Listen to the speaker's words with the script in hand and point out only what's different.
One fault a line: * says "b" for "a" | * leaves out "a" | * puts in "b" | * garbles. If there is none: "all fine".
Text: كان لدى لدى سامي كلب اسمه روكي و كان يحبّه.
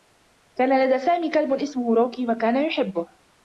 * leaves out "لدى"